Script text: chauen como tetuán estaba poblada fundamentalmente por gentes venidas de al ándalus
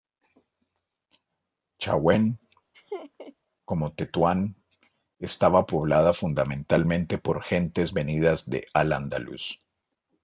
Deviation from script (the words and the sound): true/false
true